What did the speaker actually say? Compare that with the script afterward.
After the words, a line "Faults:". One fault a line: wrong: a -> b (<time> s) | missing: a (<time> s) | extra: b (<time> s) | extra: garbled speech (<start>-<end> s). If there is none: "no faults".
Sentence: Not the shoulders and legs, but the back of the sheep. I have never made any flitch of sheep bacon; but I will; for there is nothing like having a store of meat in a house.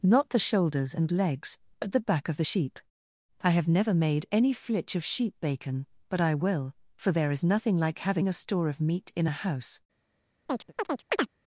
Not the shoulders and legs, but the back of the sheep. I have never made any flitch of sheep bacon; but I will; for there is nothing like having a store of meat in a house.
Faults:
no faults